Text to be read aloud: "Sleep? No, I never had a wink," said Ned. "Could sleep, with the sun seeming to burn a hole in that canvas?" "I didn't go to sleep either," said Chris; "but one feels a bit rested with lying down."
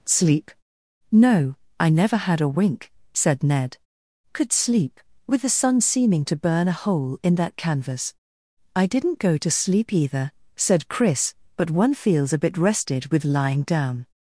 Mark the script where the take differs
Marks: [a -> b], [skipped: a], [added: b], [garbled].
"Sleep? No, I never had a wink," said Ned. "Could sleep, with the sun seeming to burn a hole in that canvas?" "I didn't go to sleep either," said Chris; "but one feels a bit rested with lying down."